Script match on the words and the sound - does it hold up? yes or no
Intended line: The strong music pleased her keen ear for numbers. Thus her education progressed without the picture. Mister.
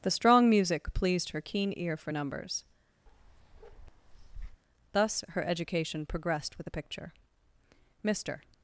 no